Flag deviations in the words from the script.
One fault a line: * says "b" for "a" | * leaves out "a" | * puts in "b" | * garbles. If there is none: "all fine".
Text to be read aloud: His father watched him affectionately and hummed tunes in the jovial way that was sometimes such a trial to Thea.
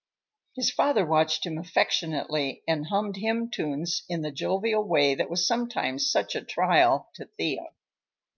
* puts in "hymn"